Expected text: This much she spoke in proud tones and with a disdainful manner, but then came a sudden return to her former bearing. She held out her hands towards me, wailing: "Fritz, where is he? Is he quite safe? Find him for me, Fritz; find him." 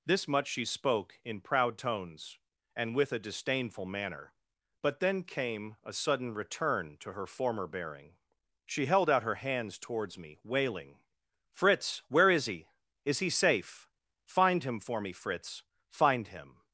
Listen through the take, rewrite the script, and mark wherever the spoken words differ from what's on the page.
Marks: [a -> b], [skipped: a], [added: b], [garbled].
This much she spoke in proud tones and with a disdainful manner, but then came a sudden return to her former bearing. She held out her hands towards me, wailing: "Fritz, where is he? Is he [skipped: quite] safe? Find him for me, Fritz; find him."